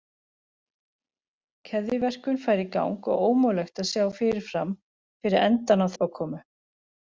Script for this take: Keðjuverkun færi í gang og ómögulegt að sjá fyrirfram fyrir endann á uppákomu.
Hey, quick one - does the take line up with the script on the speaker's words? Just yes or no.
yes